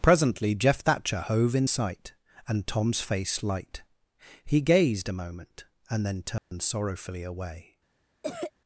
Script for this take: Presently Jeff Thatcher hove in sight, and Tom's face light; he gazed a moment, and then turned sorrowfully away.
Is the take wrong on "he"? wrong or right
right